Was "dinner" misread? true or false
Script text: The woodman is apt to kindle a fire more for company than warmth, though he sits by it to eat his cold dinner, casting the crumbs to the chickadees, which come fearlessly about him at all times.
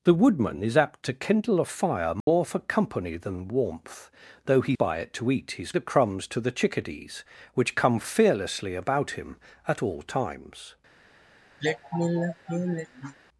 true